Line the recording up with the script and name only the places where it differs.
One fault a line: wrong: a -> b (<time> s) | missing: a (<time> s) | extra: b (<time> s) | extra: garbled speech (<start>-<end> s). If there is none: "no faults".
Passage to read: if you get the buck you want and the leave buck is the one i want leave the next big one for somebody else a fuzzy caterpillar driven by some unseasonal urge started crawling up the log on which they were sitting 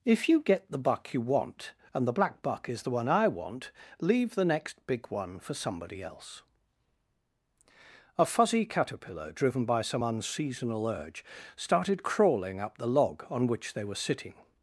wrong: leave -> black (2.1 s)